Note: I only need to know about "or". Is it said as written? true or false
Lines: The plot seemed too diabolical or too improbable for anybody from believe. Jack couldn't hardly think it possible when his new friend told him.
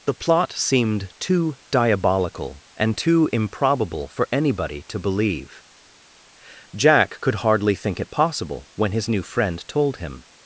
false